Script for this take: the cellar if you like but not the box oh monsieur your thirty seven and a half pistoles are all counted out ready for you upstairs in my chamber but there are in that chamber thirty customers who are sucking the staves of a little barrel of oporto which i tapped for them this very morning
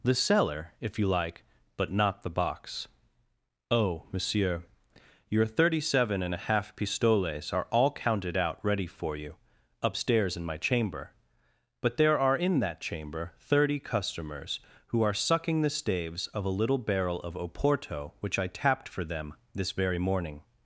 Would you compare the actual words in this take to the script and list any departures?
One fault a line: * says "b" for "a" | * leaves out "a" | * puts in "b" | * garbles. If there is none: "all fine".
all fine